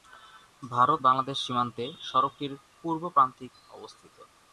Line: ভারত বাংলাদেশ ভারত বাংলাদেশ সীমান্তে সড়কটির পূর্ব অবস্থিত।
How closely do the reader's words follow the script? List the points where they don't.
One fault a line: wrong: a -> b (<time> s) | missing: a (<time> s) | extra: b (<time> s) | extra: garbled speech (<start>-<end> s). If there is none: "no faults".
missing: ভারত বাংলাদেশ (1.4 s)
extra: প্রান্তিক (3.1 s)